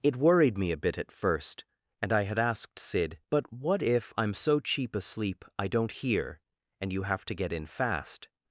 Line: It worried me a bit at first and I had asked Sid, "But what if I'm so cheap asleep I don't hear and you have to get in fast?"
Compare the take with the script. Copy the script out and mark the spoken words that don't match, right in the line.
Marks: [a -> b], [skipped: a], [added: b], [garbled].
It worried me a bit at first and I had asked Sid, "But what if I'm so cheap asleep I don't hear and you have to get in fast?"